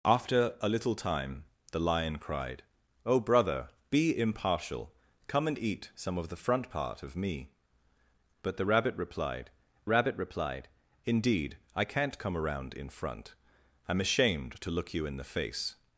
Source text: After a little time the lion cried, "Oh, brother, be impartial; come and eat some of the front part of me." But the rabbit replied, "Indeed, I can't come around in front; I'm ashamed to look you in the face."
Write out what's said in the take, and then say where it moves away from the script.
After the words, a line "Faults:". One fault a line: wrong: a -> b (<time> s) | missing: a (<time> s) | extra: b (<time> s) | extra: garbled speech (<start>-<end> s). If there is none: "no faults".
After a little time the lion cried, "Oh, brother, be impartial; come and eat some of the front part of me." But the rabbit replied rabbit replied, "Indeed, I can't come around in front; I'm ashamed to look you in the face."
Faults:
extra: rabbit replied (9.9 s)